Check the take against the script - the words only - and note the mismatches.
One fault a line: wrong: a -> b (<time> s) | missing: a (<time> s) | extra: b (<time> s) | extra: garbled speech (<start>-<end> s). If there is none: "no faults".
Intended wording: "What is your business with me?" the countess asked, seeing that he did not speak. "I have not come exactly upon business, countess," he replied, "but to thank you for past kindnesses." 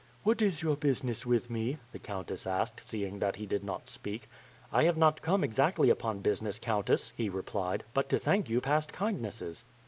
missing: for (8.6 s)